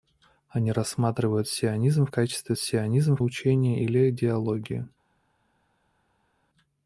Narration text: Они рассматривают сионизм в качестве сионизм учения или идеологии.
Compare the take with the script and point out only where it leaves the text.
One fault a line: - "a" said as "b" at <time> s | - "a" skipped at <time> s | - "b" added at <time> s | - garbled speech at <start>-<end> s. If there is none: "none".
none